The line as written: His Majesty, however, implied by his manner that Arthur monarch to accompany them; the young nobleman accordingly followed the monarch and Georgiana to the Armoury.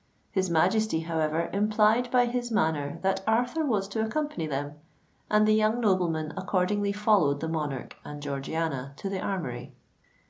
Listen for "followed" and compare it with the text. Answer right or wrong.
right